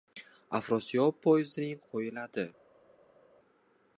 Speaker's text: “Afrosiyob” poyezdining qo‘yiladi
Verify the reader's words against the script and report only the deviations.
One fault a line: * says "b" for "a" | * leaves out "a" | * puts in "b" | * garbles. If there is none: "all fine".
all fine